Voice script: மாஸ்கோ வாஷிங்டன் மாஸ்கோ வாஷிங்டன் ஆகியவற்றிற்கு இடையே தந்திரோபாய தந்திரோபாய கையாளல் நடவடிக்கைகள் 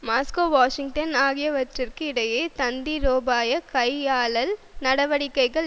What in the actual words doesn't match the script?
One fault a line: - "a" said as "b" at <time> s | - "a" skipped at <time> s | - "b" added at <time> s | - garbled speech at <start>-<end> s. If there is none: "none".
- "மாஸ்கோ வாஷிங்டன்" skipped at 1.1 s
- "தந்திரோபாய" skipped at 3.6 s